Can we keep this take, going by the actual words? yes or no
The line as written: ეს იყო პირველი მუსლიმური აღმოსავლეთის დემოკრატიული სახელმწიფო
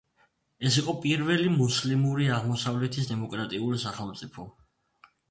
yes